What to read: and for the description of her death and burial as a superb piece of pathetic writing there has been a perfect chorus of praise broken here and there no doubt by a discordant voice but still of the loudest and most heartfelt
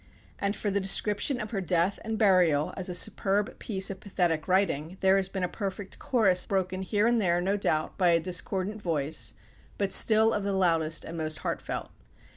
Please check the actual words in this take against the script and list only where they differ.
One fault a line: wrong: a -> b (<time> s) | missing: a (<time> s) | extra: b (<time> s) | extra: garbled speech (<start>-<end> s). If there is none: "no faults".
missing: of praise (6.5 s)